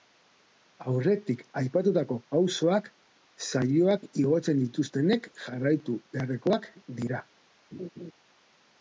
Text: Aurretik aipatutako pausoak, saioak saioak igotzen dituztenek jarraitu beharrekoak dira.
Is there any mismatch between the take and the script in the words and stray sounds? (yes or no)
yes